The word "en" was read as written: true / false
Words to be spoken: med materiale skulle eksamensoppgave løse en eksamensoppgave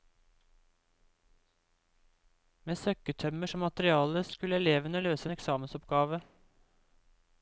true